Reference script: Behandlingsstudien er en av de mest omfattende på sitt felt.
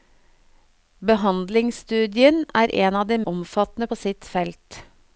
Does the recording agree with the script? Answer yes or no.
no